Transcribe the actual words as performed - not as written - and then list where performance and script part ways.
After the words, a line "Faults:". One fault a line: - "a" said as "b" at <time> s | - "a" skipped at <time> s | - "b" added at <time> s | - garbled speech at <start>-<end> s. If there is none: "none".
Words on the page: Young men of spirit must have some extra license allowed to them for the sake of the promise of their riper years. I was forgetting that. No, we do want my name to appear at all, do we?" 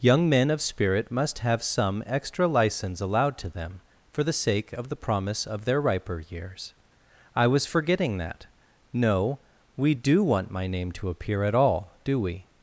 Young men of spirit must have some extra license allowed to them for the sake of the promise of their riper years. I was forgetting that. No, we do want my name to appear at all, do we?"
Faults:
none